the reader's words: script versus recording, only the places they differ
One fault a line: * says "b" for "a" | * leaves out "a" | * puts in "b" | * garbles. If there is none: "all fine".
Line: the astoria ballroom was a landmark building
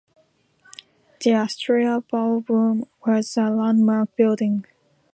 all fine